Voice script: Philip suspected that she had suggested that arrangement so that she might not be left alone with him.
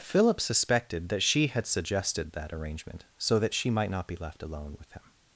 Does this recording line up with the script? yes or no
yes